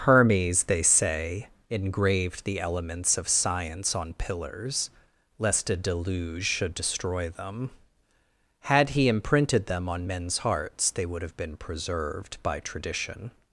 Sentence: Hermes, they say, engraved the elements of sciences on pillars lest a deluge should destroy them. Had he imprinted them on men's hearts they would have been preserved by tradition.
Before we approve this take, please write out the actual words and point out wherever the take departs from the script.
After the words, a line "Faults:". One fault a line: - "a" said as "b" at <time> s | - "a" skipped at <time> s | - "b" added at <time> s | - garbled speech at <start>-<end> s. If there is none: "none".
Hermes, they say, engraved the elements of science on pillars lest a deluge should destroy them. Had he imprinted them on men's hearts they would have been preserved by tradition.
Faults:
- "sciences" said as "science" at 3.3 s